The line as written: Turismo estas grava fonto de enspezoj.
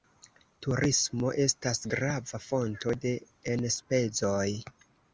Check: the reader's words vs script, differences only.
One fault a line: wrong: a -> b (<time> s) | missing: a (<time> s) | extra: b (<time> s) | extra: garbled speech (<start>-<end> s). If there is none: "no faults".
no faults